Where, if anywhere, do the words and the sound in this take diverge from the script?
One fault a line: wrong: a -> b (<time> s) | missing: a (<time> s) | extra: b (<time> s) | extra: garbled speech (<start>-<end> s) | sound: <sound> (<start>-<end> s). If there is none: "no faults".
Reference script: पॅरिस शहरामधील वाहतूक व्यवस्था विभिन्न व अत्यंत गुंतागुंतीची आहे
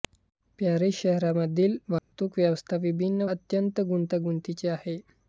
sound: dropout (2.0-2.1 s)
missing: व (3.2 s)